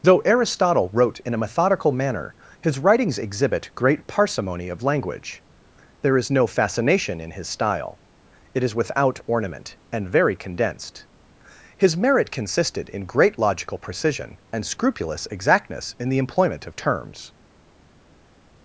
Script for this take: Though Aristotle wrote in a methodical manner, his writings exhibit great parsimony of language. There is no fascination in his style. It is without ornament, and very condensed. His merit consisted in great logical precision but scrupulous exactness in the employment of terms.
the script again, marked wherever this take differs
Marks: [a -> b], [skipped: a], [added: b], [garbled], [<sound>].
Though Aristotle wrote in a methodical manner, his writings exhibit great parsimony of language. There is no fascination in his style. It is without ornament, and very condensed. His merit consisted in great logical precision [but -> and] scrupulous exactness in the employment of terms.